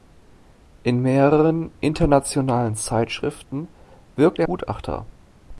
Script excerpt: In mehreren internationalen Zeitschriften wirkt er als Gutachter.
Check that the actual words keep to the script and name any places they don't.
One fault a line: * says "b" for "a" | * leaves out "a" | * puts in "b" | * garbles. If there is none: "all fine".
* leaves out "als"